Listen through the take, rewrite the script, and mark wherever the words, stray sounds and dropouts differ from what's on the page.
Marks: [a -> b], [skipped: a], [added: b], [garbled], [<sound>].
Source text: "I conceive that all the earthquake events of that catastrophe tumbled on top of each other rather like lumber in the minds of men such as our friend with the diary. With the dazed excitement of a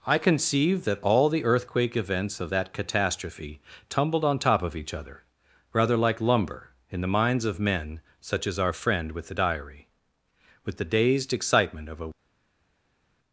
"I conceive that all the earthquake events of that catastrophe tumbled on top of each other rather like lumber in the minds of men such as our friend with the diary. With the dazed excitement of a